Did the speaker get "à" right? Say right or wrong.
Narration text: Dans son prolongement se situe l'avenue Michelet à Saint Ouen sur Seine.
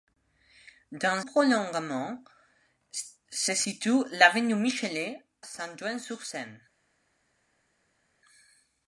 wrong